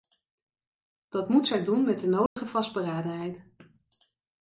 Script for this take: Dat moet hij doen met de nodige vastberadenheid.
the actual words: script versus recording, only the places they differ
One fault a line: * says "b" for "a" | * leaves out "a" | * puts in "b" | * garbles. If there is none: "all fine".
* says "zij" for "hij"